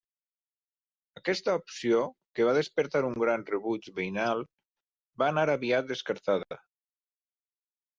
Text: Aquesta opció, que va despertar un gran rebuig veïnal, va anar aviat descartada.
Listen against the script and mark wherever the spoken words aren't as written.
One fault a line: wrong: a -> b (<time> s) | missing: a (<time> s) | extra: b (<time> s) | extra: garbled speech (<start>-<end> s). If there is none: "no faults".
no faults